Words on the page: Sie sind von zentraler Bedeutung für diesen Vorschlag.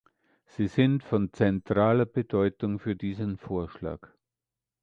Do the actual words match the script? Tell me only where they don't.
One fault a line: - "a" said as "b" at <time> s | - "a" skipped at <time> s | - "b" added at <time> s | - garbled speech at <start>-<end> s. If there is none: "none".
none